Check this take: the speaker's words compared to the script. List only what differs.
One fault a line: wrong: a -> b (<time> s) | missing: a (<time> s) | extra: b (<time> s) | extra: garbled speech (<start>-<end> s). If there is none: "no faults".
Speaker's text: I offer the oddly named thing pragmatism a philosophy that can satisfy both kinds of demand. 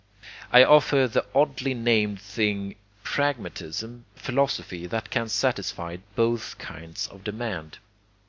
no faults